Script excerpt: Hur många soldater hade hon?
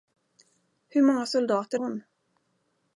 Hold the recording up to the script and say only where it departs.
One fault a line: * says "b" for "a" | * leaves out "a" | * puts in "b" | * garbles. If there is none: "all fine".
* leaves out "hade"